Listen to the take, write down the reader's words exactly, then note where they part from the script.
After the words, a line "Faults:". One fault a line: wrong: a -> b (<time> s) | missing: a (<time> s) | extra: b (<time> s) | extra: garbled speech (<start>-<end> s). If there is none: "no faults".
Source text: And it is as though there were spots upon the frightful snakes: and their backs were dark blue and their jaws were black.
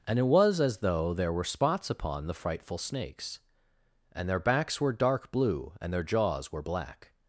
And it was as though there were spots upon the frightful snakes: and their backs were dark blue and their jaws were black.
Faults:
wrong: is -> was (0.2 s)